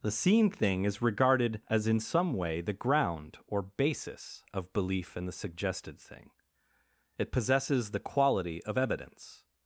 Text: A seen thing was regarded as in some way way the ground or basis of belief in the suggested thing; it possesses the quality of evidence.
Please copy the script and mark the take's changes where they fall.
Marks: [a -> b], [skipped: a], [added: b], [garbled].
[A -> The] seen thing [was -> is] regarded as in some way [skipped: way] the ground or basis of belief in the suggested thing; it possesses the quality of evidence.